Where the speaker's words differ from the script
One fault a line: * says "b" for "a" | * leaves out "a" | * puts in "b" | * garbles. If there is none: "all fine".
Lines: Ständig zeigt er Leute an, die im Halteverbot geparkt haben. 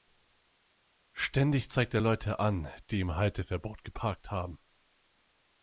all fine